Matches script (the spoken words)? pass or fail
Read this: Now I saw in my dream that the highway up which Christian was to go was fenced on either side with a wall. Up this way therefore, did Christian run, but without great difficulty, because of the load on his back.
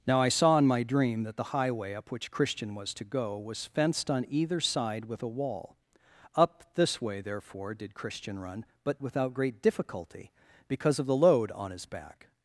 pass